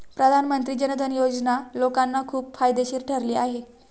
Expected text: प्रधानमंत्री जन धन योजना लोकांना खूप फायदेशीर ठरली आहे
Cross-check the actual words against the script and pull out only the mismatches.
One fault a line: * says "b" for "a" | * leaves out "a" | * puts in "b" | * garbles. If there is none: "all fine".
all fine